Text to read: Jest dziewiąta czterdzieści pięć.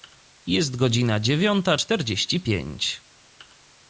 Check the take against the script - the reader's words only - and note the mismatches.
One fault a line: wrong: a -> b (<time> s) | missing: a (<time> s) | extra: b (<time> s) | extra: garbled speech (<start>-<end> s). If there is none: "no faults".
extra: godzina (0.8 s)